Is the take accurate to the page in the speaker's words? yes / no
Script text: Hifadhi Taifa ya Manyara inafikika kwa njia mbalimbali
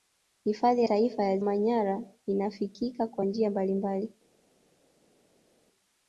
yes